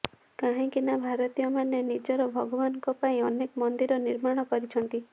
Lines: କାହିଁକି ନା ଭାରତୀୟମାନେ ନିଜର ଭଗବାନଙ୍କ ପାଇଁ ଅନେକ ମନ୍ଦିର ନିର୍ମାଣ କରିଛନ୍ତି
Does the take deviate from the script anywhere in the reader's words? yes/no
no